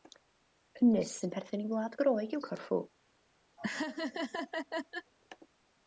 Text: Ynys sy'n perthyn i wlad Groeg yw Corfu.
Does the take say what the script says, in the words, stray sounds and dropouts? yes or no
no